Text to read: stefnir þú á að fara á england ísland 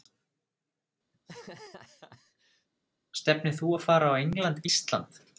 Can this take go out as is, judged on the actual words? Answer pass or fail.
pass